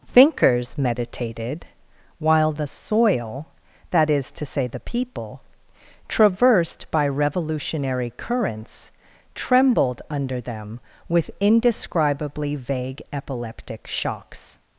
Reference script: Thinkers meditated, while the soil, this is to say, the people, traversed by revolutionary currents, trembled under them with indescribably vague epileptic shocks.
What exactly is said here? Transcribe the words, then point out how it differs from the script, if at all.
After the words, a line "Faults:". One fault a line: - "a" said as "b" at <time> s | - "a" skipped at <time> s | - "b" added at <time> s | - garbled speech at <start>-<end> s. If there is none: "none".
Thinkers meditated, while the soil, that is to say, the people, traversed by revolutionary currents, trembled under them with indescribably vague epileptic shocks.
Faults:
- "this" said as "that" at 3.9 s